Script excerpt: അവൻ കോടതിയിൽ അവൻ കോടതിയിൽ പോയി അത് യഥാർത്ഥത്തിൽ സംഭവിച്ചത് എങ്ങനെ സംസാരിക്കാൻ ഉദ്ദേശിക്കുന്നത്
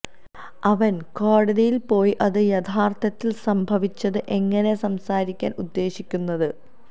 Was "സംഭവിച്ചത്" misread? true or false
false